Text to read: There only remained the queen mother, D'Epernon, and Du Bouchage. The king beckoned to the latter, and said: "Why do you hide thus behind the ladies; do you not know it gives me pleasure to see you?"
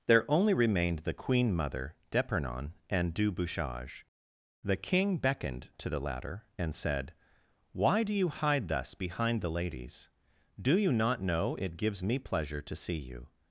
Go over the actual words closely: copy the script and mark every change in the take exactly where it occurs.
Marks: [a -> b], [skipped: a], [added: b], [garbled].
There only remained the queen mother, D'Epernon, and Du Bouchage. The king beckoned to the latter, and said: "Why do you hide thus behind the ladies; do you not know it gives me pleasure to see you?"